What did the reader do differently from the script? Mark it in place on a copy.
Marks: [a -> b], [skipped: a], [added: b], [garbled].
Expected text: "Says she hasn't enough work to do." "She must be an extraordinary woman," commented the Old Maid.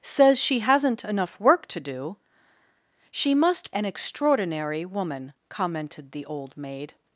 "Says she hasn't enough work to do." "She must [skipped: be] an extraordinary woman," commented the Old Maid.